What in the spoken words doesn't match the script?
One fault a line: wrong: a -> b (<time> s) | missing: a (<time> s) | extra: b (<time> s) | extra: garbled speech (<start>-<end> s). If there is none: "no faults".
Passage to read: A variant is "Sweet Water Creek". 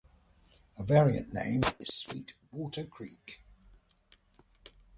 extra: name (1.3 s)